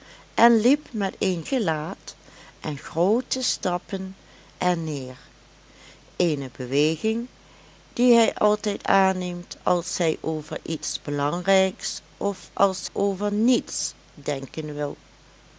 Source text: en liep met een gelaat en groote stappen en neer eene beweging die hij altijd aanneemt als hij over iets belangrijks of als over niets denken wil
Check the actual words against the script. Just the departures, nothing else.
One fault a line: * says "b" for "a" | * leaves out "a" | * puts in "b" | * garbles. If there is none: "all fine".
all fine